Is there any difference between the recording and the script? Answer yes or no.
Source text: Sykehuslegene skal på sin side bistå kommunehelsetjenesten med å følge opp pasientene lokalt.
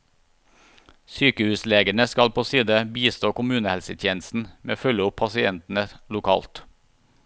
yes